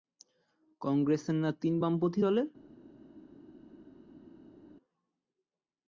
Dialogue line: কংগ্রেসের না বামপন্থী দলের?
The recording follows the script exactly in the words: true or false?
false